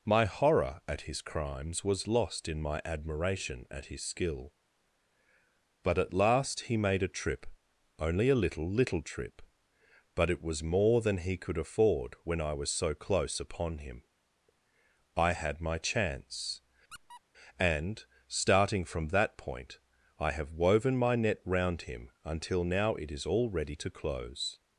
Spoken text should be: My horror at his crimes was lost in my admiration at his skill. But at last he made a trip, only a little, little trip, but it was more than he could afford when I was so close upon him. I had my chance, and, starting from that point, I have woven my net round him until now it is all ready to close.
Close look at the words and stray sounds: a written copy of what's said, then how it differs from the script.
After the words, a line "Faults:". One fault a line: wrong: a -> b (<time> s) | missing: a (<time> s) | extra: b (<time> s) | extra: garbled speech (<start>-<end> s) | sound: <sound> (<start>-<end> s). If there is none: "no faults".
My horror at his crimes was lost in my admiration at his skill. But at last he made a trip, only a little, little trip, but it was more than he could afford when I was so close upon him. I had my chance, and, starting from that point, I have woven my net round him until now it is all ready to close.
Faults:
sound: squeak (16.9-17.2 s)